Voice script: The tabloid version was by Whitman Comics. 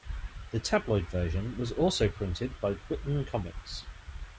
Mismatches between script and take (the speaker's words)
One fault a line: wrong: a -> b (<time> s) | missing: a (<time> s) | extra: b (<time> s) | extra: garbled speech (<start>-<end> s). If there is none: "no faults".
extra: also printed (1.7 s)